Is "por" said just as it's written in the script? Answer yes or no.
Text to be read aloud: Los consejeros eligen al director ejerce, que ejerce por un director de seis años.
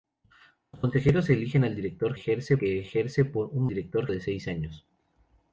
yes